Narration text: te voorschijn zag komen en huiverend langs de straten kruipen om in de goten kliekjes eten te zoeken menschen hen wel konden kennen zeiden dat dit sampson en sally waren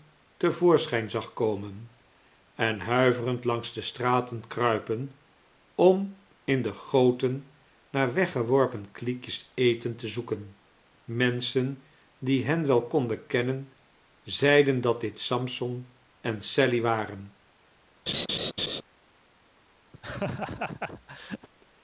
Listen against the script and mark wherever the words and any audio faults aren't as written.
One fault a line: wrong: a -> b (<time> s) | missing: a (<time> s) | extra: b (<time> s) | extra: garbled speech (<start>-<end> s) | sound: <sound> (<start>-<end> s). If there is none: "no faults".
extra: naar weggeworpen (7.9 s)
extra: die (12.2 s)
sound: laugh (18.1-18.8 s)
sound: laugh (19.9-21.5 s)